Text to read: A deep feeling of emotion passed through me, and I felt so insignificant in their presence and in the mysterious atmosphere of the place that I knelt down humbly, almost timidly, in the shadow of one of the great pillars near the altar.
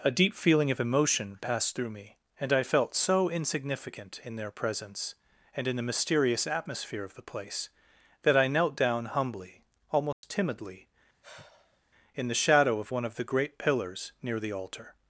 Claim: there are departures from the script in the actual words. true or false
false